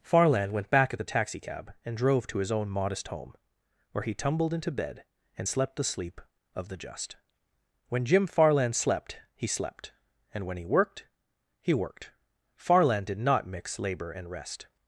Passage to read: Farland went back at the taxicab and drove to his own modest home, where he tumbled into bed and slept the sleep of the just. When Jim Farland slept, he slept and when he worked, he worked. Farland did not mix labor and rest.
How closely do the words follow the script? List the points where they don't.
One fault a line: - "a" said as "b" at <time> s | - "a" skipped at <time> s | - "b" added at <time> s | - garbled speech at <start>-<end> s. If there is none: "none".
none